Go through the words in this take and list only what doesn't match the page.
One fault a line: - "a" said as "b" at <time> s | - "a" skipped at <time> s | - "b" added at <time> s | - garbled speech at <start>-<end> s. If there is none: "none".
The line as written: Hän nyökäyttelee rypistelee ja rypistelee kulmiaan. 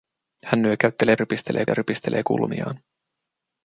none